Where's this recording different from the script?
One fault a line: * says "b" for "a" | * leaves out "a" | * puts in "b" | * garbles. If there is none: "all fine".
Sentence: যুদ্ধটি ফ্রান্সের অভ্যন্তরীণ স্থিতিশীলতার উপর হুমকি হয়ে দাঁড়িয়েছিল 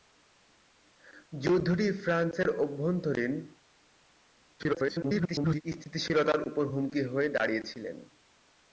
* garbles